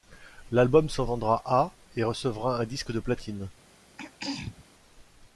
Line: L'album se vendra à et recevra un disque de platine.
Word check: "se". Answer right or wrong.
right